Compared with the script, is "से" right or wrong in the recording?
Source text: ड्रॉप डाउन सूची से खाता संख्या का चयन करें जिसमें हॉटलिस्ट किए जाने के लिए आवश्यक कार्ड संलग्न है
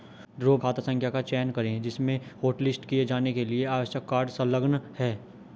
wrong